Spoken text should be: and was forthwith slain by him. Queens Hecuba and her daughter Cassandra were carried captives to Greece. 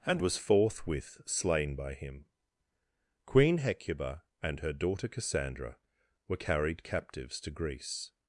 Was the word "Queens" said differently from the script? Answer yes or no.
yes